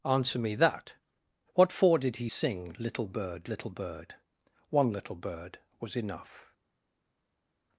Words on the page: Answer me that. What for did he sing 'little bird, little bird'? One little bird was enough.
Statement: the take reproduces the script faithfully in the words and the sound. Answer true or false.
true